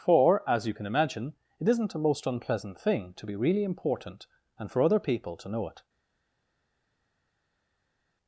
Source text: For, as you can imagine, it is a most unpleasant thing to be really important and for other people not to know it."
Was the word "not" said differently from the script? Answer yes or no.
yes